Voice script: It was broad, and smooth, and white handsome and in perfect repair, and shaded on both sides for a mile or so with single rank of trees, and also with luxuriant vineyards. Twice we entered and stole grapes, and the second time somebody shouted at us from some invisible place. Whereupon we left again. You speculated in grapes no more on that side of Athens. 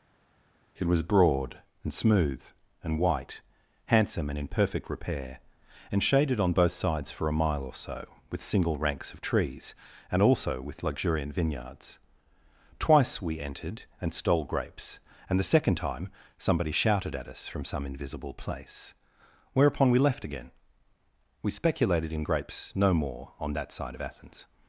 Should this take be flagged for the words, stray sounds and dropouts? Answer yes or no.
yes